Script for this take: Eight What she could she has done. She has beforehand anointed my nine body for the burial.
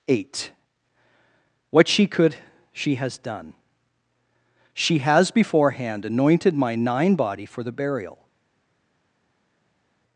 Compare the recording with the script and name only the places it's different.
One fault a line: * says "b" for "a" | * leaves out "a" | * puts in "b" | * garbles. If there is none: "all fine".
all fine